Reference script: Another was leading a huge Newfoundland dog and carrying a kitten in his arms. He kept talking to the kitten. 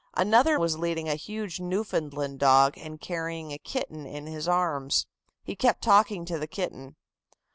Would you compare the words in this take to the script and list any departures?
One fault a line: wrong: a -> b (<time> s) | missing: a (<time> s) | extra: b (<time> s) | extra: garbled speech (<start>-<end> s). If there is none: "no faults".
no faults